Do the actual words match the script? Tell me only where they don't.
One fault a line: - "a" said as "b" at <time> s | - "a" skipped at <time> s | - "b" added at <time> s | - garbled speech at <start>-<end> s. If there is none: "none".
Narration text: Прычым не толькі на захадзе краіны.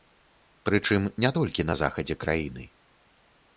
none